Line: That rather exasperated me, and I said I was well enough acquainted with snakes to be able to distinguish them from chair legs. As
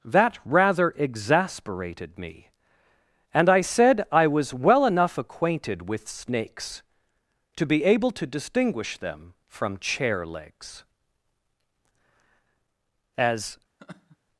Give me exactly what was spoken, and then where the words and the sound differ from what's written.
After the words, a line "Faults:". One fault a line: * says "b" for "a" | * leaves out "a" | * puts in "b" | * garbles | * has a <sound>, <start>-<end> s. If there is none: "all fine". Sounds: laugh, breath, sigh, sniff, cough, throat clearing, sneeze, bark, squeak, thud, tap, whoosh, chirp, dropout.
That rather exasperated me, and I said I was well enough acquainted with snakes to be able to distinguish them from chair legs. As
Faults:
* has a laugh, 13.8-14.2 s